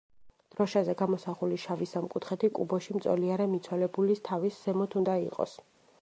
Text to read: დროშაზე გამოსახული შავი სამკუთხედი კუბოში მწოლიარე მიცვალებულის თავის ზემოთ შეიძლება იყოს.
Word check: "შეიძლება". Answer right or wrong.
wrong